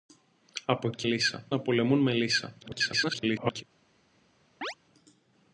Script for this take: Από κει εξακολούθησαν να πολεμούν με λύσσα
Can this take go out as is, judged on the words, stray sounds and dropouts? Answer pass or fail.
fail